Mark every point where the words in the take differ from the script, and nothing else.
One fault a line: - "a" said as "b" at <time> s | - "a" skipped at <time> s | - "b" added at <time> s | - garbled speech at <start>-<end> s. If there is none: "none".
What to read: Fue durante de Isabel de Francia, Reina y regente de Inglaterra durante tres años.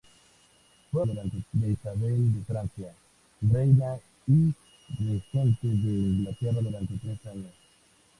none